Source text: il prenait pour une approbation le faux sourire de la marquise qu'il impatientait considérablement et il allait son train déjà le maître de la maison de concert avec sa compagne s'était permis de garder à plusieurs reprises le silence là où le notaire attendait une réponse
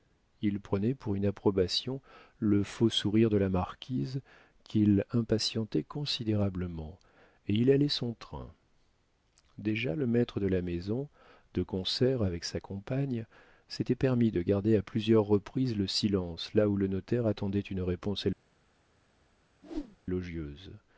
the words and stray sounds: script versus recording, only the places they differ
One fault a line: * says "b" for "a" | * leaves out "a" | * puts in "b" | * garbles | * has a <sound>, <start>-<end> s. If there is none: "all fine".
* has a whoosh, 19.6-20.0 s